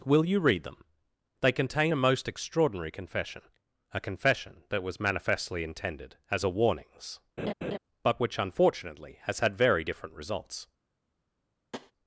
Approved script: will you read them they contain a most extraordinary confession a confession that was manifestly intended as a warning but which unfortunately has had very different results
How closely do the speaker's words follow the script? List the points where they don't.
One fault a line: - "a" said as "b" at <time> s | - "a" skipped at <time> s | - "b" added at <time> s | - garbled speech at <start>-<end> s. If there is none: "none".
- "warning" said as "warnings" at 6.5 s